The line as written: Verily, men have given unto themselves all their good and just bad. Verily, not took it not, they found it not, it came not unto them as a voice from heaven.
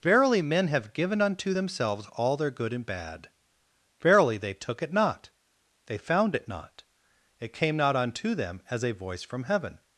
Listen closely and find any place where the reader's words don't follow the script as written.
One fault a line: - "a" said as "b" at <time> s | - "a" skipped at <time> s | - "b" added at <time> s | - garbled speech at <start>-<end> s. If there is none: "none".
- "just" skipped at 2.8 s
- "not" said as "they" at 4.4 s